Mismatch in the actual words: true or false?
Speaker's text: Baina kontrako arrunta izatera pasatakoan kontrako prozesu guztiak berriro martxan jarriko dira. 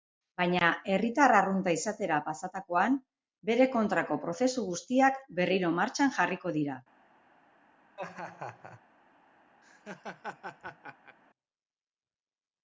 true